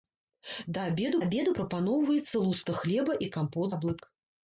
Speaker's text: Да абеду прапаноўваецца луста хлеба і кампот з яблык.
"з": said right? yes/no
no